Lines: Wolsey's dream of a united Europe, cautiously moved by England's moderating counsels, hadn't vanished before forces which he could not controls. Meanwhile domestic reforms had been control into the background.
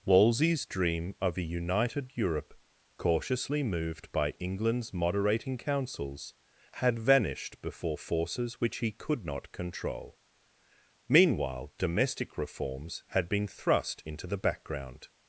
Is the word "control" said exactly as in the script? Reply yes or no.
no